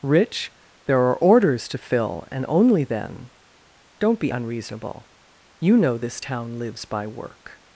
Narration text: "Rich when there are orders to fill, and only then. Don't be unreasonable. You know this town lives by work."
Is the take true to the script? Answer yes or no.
no